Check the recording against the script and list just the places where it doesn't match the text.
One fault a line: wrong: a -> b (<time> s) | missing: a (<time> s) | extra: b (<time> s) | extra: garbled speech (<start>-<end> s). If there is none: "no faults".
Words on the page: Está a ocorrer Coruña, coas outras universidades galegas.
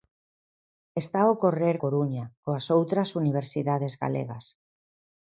no faults